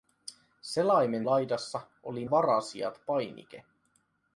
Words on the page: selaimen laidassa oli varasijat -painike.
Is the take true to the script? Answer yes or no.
yes